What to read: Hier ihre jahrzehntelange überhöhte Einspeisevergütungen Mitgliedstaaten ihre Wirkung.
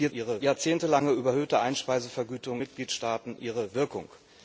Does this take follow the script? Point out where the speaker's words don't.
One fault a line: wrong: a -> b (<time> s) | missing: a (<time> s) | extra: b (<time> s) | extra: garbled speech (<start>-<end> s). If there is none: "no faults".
no faults